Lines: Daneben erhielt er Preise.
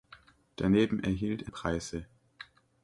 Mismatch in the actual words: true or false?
false